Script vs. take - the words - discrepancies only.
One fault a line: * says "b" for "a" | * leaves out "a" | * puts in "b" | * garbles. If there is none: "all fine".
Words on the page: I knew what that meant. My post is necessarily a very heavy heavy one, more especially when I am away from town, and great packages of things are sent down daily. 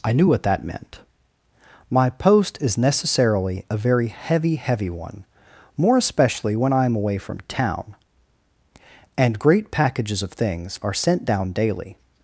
all fine